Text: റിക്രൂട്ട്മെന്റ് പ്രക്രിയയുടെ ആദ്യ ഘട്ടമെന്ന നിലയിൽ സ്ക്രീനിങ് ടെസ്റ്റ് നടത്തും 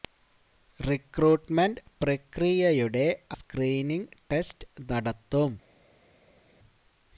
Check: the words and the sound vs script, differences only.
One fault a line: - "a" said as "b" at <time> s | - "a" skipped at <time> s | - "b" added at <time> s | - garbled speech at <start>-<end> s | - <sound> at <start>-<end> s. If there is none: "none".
- "ആദ്യ ഘട്ടമെന്ന നിലയിൽ" skipped at 3.0 s